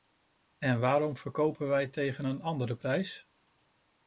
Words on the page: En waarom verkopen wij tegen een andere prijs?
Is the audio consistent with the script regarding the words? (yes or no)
yes